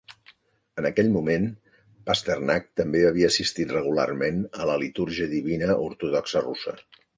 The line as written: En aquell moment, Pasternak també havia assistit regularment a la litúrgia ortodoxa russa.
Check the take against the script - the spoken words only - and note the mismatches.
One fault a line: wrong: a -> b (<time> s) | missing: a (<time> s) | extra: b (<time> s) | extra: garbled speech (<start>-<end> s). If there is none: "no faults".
extra: divina (5.4 s)